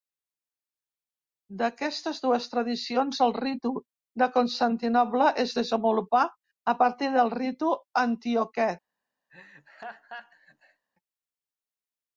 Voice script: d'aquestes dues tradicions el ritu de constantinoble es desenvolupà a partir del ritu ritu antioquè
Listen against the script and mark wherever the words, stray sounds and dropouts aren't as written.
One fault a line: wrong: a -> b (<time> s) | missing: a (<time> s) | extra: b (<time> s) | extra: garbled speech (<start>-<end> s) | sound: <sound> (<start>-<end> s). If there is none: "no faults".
missing: ritu (7.7 s)
sound: laugh (9.3-10.8 s)